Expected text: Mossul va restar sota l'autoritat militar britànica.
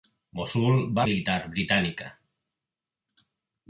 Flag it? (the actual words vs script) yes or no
yes